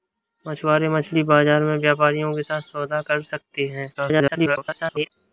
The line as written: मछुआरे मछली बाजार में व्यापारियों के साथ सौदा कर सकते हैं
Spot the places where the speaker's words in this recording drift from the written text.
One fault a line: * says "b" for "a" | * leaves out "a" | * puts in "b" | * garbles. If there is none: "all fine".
* garbles